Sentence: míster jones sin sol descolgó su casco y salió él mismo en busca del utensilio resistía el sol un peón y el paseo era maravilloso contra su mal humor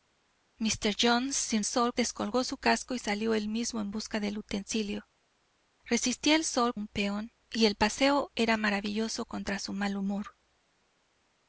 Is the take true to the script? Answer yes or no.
yes